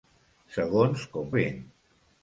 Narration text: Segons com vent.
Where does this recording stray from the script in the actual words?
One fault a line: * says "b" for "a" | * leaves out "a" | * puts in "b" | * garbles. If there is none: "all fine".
all fine